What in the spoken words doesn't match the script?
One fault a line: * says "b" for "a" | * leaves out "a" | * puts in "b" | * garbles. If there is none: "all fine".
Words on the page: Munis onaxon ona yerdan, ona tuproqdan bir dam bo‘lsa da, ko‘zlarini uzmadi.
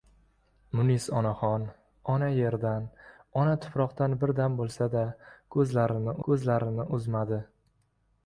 * puts in "ko‘zlarini"